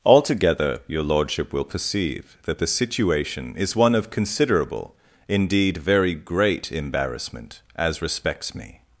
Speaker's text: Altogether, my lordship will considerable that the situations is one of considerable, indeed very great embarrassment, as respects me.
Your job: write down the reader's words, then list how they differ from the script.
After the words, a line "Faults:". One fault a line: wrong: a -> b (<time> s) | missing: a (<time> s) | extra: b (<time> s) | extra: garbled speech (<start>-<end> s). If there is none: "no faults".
Altogether, your lordship will perceive that the situation is one of considerable, indeed very great embarrassment, as respects me.
Faults:
wrong: my -> your (0.9 s)
wrong: considerable -> perceive (1.6 s)
wrong: situations -> situation (2.7 s)